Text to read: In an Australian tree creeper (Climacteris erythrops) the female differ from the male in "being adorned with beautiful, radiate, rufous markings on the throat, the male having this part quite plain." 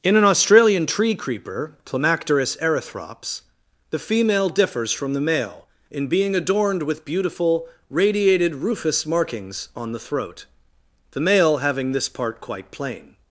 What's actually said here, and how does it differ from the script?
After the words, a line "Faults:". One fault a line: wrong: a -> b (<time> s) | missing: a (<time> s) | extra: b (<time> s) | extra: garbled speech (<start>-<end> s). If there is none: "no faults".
In an Australian tree creeper (Climacteris erythrops) the female differs from the male in "being adorned with beautiful, radiated, rufous markings on the throat, the male having this part quite plain."
Faults:
wrong: differ -> differs (4.5 s)
wrong: radiate -> radiated (7.9 s)